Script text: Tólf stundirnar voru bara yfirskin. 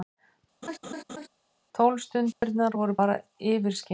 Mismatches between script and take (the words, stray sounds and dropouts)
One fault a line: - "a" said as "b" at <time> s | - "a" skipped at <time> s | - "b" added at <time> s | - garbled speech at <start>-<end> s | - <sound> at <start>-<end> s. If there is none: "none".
- laugh at 0.6-1.3 s
- dropout at 2.3-2.4 s